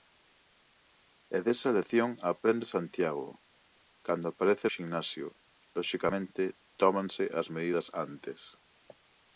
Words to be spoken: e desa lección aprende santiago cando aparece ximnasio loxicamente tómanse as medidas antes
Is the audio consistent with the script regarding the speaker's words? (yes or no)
yes